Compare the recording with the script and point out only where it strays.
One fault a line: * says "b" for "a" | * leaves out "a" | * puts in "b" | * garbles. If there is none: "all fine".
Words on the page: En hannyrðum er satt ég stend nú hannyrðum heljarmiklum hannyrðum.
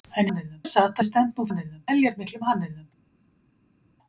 all fine